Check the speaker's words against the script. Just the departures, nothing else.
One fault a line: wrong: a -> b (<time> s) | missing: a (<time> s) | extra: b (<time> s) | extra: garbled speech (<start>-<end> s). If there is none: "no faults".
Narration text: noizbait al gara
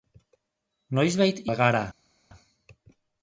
no faults